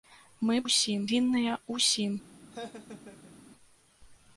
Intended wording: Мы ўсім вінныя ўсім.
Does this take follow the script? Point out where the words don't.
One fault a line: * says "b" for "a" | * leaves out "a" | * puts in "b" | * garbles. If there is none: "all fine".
all fine